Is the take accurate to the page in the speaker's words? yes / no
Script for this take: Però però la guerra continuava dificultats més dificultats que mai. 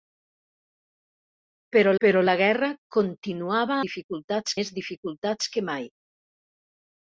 yes